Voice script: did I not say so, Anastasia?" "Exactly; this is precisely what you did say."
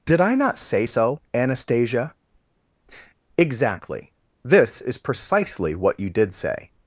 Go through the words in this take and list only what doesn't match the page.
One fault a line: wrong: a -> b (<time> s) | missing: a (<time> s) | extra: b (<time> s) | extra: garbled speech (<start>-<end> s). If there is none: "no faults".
no faults